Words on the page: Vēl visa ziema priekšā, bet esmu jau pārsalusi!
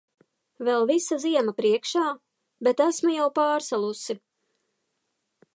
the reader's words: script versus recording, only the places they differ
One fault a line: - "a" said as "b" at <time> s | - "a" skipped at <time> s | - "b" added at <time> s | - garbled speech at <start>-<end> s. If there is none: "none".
none